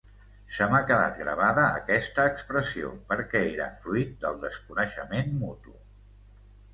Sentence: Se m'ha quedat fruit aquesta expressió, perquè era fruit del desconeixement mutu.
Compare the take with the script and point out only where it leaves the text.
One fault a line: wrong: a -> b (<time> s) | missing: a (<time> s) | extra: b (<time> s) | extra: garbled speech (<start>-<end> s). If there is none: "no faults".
wrong: fruit -> gravada (1.2 s)